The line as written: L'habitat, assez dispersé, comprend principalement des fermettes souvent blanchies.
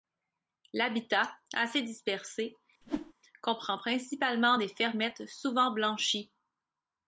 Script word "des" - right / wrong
right